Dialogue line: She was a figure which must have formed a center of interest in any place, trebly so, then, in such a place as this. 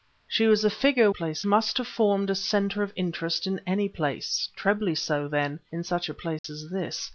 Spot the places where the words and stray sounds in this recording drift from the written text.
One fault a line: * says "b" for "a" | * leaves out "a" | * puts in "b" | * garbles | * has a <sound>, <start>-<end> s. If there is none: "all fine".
* says "place" for "which"
* has a dropout, 6.4-6.4 s